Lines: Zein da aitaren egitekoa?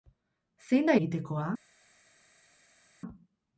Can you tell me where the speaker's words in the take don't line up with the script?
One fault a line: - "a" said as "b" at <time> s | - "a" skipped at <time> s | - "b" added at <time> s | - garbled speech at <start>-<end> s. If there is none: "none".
- "aitaren" skipped at 0.9 s